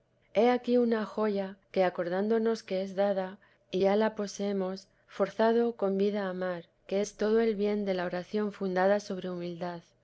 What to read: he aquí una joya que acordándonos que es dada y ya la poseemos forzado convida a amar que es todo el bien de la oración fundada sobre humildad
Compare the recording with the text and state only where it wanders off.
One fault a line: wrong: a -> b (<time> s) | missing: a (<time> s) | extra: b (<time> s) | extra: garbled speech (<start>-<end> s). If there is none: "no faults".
no faults